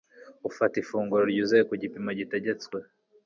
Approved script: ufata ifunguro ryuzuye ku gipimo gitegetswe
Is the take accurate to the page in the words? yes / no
yes